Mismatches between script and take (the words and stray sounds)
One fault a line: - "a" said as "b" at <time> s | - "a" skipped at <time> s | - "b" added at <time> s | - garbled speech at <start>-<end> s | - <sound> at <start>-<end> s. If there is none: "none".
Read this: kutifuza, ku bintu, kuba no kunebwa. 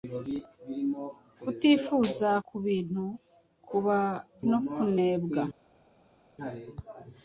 none